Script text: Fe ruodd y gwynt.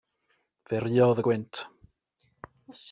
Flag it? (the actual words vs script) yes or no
no